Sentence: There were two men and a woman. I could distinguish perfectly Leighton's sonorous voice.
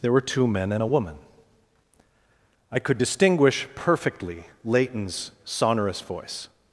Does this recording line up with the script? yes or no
yes